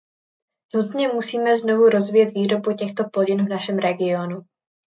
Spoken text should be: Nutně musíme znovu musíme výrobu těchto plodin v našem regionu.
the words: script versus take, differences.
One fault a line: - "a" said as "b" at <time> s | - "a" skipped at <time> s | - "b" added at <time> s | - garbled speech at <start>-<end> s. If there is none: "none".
- "musíme" said as "rozvíjet" at 1.9 s